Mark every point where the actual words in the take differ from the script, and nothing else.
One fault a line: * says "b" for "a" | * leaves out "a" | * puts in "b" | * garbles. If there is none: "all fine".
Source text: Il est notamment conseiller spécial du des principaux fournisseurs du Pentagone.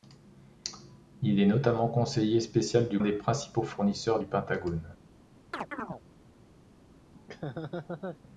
all fine